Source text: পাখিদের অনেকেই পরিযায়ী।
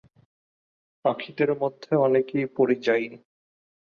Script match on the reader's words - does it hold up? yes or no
no